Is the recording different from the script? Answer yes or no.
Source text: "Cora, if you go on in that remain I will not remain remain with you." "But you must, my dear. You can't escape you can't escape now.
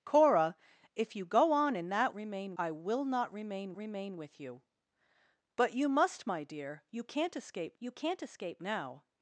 no